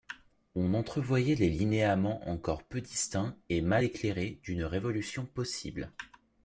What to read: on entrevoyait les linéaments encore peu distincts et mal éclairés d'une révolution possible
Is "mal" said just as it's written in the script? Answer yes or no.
yes